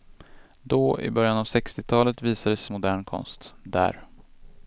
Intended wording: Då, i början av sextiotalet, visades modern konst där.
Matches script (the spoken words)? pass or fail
pass